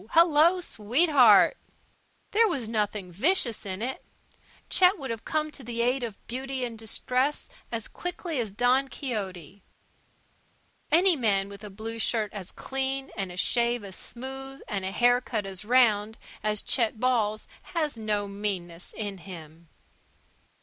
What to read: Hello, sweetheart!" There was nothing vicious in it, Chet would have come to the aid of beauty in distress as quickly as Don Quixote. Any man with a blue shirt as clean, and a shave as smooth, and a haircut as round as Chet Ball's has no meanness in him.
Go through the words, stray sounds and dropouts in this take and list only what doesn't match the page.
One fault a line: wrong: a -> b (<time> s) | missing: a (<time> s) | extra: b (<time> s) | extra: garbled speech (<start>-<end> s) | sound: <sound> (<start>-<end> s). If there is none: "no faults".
no faults